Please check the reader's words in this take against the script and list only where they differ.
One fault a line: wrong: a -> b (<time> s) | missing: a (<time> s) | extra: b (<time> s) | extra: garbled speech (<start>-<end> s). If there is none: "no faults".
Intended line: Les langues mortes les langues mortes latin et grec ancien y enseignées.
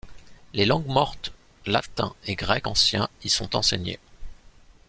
missing: les langues mortes (1.3 s)
extra: sont (3.3 s)